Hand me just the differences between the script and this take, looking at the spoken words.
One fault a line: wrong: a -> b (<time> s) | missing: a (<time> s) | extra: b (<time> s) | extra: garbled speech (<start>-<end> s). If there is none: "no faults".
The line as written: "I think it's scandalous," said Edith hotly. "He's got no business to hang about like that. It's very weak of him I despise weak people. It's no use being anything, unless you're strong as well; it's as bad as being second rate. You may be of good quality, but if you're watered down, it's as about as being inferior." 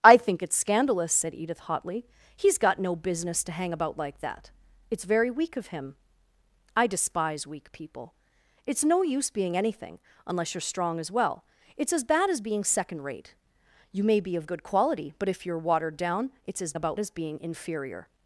no faults